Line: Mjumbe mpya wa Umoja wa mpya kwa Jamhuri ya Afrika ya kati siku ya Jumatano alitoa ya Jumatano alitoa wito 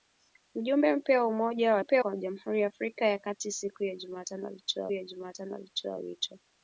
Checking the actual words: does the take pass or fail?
pass